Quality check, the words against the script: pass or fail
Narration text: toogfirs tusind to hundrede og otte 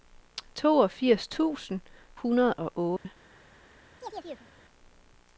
fail